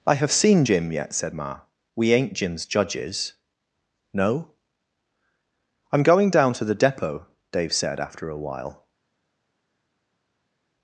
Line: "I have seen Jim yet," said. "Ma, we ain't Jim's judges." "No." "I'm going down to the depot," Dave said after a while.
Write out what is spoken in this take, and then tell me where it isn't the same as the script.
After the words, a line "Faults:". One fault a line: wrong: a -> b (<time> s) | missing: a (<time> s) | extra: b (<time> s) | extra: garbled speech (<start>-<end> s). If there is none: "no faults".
"I have seen Jim yet," said. "Ma, we ain't Jim's judges." "No." "I'm going down to the depot," Dave said after a while.
Faults:
no faults